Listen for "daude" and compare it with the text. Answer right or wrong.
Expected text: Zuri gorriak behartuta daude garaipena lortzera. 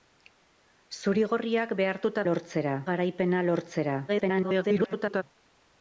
wrong